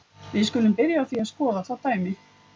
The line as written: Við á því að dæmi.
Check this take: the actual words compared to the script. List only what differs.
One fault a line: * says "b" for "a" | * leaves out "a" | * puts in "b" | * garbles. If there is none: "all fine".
* puts in "skulum byrja"
* puts in "skoða það"